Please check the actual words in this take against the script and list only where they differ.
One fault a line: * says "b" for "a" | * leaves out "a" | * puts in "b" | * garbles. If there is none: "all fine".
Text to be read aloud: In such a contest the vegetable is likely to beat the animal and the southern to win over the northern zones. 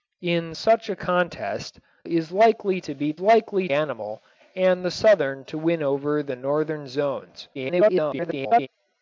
* leaves out "the vegetable"
* says "likely" for "the"
* garbles